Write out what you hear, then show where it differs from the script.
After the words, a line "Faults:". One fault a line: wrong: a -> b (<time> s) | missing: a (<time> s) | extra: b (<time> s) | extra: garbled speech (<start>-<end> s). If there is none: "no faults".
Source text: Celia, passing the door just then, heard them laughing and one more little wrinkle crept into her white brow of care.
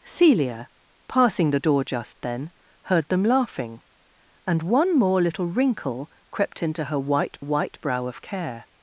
Celia, passing the door just then, heard them laughing and one more little wrinkle crept into her white white brow of care.
Faults:
extra: white (7.4 s)